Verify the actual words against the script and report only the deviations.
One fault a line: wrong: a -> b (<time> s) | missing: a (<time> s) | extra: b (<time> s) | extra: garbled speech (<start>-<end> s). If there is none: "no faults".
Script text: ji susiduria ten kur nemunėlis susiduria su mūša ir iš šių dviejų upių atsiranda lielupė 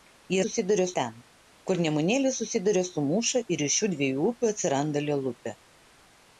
no faults